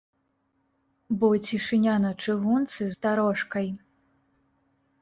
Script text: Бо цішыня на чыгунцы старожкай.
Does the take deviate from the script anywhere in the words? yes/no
no